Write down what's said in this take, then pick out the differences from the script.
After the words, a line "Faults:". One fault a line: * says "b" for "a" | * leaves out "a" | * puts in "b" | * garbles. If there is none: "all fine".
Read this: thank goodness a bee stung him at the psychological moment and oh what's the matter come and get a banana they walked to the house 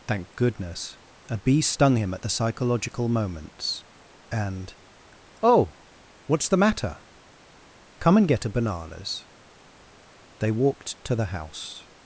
thank goodness a bee stung him at the psychological moments and oh what's the matter come and get a bananas they walked to the house
Faults:
* says "moments" for "moment"
* says "bananas" for "banana"